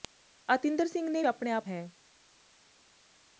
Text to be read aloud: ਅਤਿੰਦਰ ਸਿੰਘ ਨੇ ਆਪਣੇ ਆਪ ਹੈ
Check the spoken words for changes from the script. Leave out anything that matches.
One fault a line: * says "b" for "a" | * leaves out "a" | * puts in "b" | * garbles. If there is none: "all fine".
all fine